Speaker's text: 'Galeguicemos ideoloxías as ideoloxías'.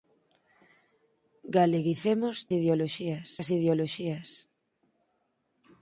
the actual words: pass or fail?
pass